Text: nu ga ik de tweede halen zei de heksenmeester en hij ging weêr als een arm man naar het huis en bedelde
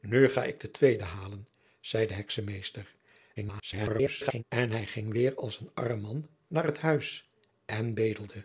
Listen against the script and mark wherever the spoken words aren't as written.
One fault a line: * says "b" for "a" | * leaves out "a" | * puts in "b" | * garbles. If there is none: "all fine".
* garbles